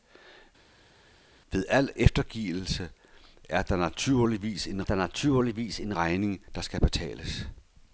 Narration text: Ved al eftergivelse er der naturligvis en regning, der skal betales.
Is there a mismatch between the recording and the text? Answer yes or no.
yes